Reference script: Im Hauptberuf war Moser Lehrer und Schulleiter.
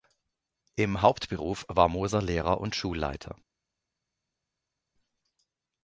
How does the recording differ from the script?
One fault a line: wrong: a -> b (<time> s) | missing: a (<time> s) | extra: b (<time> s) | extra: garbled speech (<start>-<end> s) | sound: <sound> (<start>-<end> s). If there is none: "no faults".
no faults